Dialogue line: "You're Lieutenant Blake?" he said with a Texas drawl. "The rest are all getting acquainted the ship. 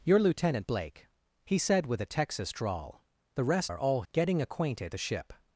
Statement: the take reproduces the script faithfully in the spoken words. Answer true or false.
true